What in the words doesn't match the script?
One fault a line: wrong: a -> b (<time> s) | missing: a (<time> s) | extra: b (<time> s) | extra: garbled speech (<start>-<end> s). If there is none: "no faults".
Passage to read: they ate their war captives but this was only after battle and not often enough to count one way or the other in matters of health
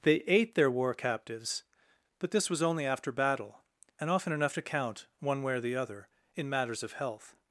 missing: not (4.1 s)